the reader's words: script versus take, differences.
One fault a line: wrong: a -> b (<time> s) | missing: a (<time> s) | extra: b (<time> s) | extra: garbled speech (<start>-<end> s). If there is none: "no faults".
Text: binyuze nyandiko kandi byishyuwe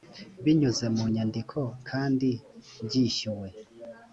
extra: mu (0.9 s)